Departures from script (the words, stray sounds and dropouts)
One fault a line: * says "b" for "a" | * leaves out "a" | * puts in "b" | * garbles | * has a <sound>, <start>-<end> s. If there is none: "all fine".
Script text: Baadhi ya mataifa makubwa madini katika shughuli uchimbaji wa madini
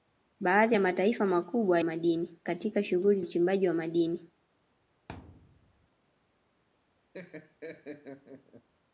* has a thud, 5.1-5.9 s
* has a laugh, 7.1-8.7 s